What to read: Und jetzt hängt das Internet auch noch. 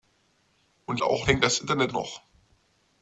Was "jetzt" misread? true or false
true